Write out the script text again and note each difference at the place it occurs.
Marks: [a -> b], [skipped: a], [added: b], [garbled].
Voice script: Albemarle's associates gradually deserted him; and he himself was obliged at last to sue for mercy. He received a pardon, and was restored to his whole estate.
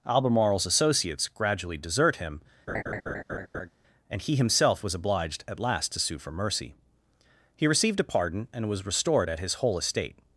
Albemarle's associates gradually [deserted -> desert] him; and he himself was obliged at last to sue for mercy. He received a pardon, and was restored [to -> at] his whole estate.